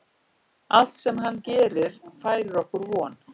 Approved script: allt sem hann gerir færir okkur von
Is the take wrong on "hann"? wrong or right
right